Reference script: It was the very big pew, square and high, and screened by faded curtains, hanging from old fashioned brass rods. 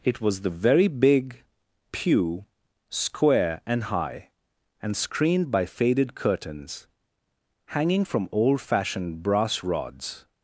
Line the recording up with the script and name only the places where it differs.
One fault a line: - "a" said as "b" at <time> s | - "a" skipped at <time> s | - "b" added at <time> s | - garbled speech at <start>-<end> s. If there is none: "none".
none